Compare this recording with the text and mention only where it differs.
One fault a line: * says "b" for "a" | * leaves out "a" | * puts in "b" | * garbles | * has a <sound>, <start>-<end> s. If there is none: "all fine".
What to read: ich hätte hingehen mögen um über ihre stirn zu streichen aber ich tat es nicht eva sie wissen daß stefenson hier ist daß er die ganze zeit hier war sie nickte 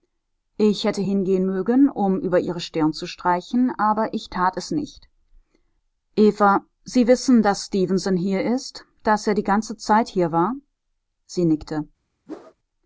* has a whoosh, 12.3-12.5 s